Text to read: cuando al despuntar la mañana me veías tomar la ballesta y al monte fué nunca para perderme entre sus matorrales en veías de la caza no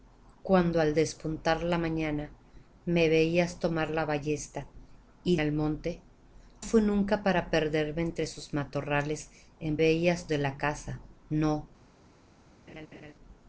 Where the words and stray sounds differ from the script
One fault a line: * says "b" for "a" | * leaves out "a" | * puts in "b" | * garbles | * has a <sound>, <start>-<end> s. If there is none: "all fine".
* has a laugh, 12.7-13.1 s